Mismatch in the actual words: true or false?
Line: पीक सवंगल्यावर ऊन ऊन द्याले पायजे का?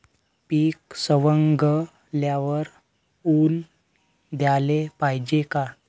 true